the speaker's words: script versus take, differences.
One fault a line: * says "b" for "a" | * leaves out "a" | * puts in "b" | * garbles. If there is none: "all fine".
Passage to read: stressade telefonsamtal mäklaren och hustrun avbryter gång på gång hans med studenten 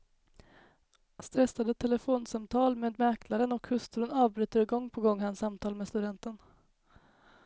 * puts in "med"
* puts in "samtal"